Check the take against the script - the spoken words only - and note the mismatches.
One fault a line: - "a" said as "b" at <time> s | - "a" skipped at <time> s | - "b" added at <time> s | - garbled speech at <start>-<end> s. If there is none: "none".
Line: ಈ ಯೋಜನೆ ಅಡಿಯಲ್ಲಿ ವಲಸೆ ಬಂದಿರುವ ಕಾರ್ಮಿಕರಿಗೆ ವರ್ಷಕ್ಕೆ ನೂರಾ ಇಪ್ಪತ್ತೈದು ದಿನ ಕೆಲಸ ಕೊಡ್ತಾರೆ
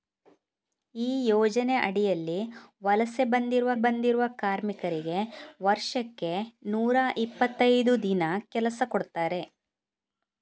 - "ಬಂದಿರುವ" added at 3.8 s